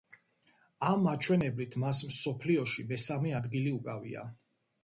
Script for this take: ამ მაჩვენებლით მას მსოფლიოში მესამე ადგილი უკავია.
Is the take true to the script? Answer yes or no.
yes